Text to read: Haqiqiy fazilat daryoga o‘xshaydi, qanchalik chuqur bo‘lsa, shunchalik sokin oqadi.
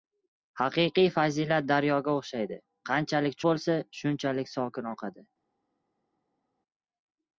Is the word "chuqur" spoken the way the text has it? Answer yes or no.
no